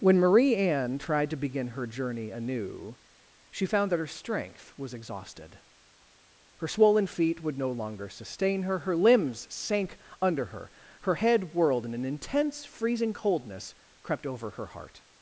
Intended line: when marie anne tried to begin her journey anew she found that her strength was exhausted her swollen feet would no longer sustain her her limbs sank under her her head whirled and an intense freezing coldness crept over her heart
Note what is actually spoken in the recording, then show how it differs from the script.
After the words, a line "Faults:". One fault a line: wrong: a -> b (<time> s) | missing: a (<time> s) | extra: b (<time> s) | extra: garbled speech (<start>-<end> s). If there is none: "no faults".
when marie anne tried to begin her journey anew she found that her strength was exhausted her swollen feet would no longer sustain her her limbs sank under her her head whirled and an intense freezing coldness crept over her heart
Faults:
no faults